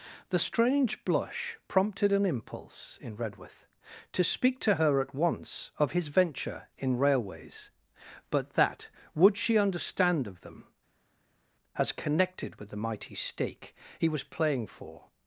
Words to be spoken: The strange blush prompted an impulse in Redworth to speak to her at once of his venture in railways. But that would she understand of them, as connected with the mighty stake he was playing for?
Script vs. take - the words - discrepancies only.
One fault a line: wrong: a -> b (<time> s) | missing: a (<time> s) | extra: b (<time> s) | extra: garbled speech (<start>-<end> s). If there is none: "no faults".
no faults